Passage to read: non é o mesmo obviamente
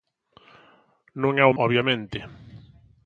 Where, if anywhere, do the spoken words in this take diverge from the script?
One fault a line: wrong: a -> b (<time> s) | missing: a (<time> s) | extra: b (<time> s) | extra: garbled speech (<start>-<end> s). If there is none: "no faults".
missing: mesmo (1.6 s)